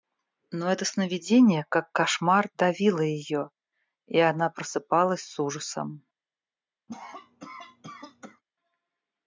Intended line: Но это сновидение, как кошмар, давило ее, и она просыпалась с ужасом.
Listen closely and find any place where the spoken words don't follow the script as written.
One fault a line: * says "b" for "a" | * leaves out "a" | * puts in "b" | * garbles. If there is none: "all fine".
all fine